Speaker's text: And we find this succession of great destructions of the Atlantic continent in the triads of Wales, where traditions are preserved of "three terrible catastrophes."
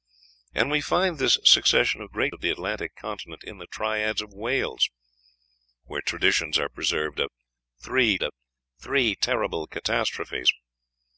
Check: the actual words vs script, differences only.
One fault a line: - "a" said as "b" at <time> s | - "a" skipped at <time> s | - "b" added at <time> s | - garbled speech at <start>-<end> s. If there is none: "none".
- "destructions" skipped at 2.4 s
- "of three" added at 8.2 s